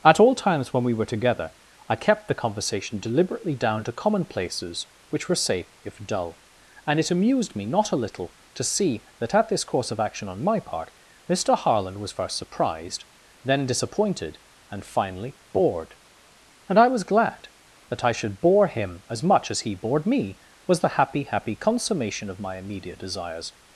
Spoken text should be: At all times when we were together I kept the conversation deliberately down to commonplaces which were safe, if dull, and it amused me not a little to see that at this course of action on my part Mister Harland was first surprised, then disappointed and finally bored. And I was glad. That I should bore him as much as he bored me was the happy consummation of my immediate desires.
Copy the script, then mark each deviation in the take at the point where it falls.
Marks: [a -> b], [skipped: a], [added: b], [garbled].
At all times when we were together I kept the conversation deliberately down to commonplaces which were safe, if dull, and it amused me not a little to see that at this course of action on my part Mister Harland was first surprised, then disappointed and finally bored. And I was glad. That I should bore him as much as he bored me was the happy [added: happy] consummation of my immediate desires.